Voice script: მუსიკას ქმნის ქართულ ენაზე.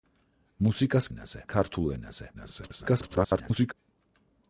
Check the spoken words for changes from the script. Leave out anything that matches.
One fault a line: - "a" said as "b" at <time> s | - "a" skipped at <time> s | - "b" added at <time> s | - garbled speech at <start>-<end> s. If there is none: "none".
- "ქმნის" said as "ენაზე" at 1.1 s
- garbled speech at 2.3-3.7 s